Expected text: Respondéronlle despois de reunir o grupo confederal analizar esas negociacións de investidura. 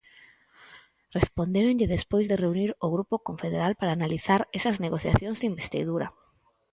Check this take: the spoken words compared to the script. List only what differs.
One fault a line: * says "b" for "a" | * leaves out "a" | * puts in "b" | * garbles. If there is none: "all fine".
* puts in "para"